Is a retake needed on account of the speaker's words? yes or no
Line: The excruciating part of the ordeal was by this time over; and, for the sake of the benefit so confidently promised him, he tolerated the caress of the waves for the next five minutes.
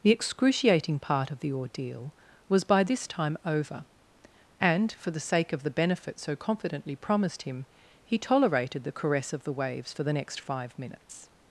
no